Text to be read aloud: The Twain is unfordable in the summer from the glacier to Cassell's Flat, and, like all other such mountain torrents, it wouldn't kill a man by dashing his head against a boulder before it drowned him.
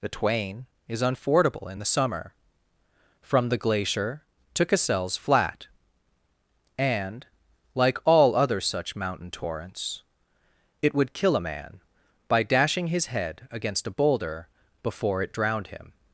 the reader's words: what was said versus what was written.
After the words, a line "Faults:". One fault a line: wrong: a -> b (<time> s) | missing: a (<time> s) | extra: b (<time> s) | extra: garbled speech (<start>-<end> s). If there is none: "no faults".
The Twain is unfordable in the summer from the glacier to Cassell's Flat, and, like all other such mountain torrents, it would kill a man by dashing his head against a boulder before it drowned him.
Faults:
wrong: wouldn't -> would (10.9 s)